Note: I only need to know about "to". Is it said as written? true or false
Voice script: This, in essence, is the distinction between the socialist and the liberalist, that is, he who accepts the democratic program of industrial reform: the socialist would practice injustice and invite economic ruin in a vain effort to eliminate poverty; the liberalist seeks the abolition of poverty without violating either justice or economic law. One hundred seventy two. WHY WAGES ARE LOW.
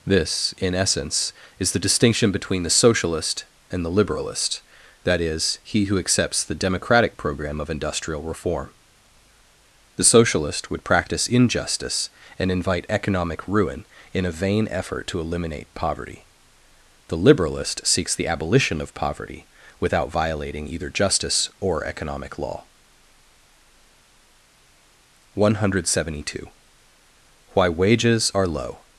true